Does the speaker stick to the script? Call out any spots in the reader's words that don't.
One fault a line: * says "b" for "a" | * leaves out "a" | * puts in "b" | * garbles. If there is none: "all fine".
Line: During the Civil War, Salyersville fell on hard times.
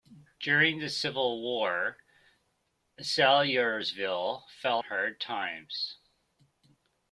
* leaves out "on"